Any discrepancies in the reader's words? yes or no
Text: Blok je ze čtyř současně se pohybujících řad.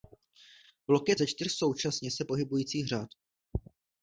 no